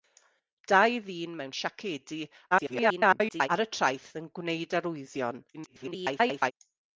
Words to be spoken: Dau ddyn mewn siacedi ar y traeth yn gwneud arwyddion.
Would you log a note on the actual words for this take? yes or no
yes